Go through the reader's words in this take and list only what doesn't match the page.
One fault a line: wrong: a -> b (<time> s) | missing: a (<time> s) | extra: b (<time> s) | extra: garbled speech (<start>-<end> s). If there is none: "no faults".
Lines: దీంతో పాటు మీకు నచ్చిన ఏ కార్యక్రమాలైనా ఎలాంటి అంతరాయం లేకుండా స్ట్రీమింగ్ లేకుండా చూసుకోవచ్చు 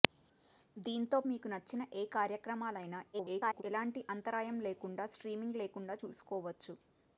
missing: పాటు (1.2 s)
extra: garbled speech (3.1-3.6 s)